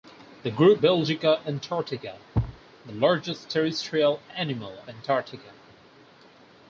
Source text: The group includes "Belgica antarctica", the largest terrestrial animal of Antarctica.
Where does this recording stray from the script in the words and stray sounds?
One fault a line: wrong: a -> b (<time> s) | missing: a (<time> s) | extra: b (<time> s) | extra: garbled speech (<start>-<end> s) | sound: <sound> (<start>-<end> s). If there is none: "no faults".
missing: includes (0.8 s)
sound: thud (2.3-2.6 s)
missing: of (4.8 s)